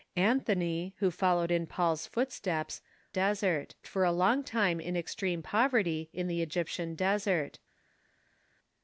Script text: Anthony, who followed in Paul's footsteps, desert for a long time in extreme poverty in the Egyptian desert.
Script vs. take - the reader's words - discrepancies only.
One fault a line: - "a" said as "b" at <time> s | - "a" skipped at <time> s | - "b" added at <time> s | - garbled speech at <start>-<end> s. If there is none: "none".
none